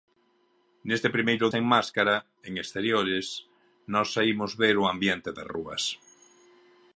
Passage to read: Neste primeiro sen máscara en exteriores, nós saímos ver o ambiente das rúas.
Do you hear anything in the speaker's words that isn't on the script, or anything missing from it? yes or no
no